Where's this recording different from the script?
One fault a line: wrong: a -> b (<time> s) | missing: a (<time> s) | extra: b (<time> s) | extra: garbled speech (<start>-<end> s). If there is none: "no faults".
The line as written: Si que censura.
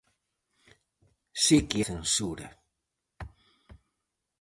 no faults